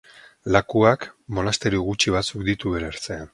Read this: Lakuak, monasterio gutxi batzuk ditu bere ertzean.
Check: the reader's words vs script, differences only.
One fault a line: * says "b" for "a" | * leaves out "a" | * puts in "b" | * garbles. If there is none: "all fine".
all fine